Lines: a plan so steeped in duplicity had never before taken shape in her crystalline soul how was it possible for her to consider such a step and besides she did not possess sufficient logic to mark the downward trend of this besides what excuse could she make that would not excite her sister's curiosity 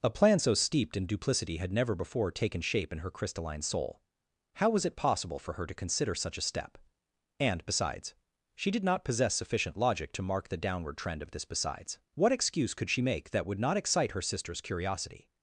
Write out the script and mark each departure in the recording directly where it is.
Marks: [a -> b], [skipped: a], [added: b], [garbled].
a plan so steeped in duplicity had never before taken shape in her crystalline soul how was it possible for her to consider such a step and besides she did not possess sufficient logic to mark the downward trend of this besides what excuse could she make that would not excite her sister's curiosity